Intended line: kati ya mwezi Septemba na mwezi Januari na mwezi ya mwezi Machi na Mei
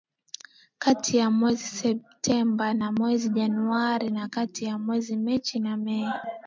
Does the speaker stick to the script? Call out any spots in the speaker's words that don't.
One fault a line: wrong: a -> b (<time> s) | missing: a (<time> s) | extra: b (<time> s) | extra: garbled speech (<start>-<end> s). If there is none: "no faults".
wrong: mwezi -> kati (4.3 s)